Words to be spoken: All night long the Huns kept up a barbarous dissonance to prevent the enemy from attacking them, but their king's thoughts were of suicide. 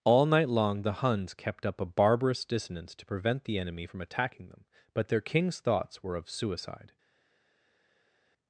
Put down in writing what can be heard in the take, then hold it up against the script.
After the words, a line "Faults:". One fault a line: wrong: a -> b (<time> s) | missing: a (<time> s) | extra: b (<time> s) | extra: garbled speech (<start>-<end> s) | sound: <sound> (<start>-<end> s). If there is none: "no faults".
All night long the Huns kept up a barbarous dissonance to prevent the enemy from attacking them, but their king's thoughts were of suicide.
Faults:
no faults